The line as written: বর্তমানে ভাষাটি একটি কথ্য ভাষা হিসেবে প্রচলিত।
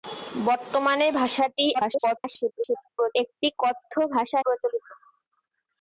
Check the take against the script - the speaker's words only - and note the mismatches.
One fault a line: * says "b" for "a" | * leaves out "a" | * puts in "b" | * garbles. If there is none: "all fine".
* garbles
* leaves out "হিসেবে"